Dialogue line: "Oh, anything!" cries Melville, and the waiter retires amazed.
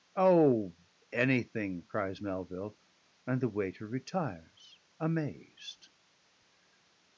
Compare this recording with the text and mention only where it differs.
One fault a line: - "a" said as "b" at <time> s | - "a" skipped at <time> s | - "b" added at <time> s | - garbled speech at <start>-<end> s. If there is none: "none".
none